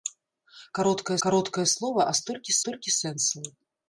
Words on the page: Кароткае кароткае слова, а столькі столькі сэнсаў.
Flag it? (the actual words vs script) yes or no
no